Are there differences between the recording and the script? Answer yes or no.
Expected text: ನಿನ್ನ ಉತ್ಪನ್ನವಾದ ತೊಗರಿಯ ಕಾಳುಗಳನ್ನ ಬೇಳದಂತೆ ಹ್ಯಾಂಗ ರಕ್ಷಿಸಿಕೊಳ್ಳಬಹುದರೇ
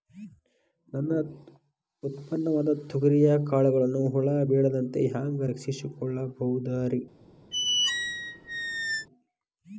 yes